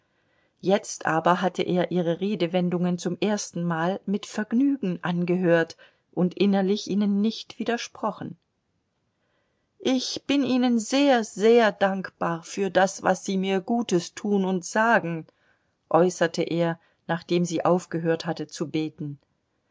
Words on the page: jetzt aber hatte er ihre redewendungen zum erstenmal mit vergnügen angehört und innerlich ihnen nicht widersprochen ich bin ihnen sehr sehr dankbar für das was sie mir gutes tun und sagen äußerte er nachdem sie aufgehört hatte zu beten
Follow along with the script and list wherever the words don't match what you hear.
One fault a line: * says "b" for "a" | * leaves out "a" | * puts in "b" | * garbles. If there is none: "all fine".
all fine